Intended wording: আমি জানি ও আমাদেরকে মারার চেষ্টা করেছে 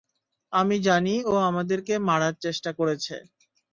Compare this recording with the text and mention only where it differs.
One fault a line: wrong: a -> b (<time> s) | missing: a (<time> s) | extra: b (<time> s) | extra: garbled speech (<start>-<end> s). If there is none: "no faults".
no faults